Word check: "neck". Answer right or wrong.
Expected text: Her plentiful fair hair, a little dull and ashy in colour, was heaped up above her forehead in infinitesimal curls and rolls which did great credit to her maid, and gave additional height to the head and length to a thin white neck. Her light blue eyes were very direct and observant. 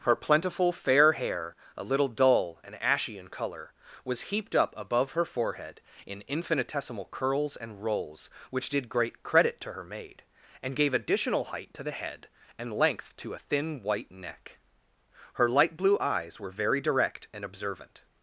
right